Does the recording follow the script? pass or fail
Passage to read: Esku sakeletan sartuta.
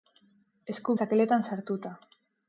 pass